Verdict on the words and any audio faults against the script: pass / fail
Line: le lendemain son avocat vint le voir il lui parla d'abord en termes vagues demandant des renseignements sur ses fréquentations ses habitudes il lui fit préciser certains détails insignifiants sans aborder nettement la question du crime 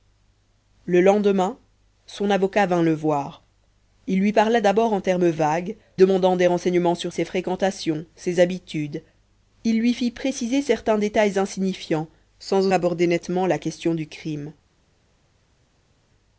pass